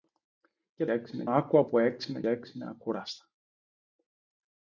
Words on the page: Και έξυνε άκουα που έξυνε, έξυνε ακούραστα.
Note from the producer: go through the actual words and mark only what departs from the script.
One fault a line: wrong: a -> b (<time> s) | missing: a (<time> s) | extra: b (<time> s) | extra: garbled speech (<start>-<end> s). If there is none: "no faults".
no faults